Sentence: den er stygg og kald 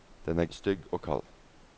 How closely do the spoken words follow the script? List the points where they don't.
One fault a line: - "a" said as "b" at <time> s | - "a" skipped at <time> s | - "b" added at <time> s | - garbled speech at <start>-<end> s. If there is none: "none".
none